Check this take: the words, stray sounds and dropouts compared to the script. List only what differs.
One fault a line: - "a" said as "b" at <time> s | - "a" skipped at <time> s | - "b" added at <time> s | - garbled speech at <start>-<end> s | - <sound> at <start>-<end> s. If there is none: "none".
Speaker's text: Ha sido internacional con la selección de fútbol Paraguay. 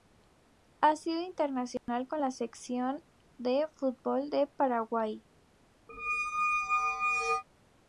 - dropout at 1.8-1.9 s
- "de" added at 4.3 s
- squeak at 5.9-7.4 s